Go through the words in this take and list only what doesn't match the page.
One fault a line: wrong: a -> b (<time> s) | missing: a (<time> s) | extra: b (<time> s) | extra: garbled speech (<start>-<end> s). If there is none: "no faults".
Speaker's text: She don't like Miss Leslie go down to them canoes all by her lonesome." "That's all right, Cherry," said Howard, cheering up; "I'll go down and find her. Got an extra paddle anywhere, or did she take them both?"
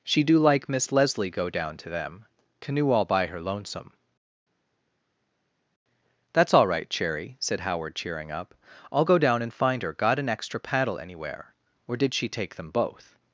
wrong: don't -> do (0.2 s)
wrong: canoes -> canoe (2.6 s)